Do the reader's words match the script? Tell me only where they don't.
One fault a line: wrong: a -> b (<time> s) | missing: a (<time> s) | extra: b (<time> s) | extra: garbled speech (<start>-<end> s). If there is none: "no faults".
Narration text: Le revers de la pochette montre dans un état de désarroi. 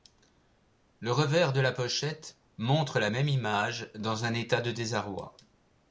extra: la même image (3.0 s)